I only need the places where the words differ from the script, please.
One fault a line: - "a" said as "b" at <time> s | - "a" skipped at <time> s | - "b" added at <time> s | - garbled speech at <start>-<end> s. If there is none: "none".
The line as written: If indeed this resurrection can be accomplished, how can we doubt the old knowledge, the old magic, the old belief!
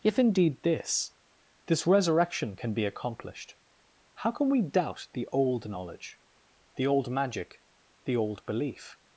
- "this" added at 1.6 s